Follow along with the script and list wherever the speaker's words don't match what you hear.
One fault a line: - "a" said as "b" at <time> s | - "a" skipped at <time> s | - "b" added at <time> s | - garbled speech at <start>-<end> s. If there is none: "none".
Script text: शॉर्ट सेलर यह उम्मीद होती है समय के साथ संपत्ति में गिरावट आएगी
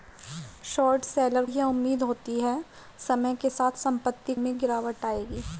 none